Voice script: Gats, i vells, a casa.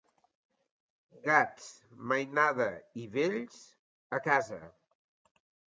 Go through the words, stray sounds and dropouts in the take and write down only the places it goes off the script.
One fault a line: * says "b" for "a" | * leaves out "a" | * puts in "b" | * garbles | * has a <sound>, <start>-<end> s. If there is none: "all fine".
* puts in "mainada"